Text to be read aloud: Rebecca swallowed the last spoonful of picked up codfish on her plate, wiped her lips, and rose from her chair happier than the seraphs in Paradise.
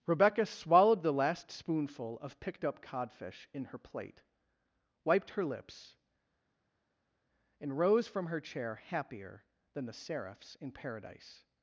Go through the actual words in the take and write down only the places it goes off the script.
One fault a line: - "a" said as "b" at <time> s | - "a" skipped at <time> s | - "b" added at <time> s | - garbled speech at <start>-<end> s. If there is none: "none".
- "on" said as "in" at 3.5 s